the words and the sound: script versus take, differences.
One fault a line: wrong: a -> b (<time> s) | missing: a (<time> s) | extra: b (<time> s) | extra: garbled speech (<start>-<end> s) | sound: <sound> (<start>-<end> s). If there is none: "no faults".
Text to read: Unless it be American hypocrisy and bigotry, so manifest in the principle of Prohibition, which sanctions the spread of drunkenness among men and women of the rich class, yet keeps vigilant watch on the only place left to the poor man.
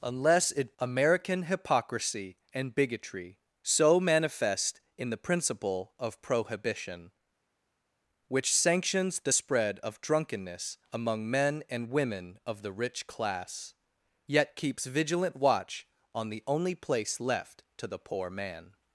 missing: be (0.7 s)